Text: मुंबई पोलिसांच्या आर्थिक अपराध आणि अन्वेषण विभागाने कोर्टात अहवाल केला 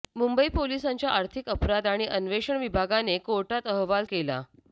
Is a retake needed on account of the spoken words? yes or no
no